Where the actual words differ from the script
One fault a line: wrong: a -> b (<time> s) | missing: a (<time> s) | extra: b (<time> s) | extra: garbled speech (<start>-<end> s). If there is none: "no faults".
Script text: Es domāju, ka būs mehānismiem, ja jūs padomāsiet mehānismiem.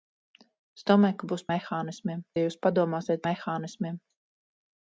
no faults